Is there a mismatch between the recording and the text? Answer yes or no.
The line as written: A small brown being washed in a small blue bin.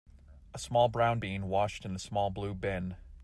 no